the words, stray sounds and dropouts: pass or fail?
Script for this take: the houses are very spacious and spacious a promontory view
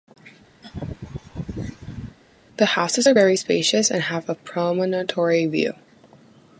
fail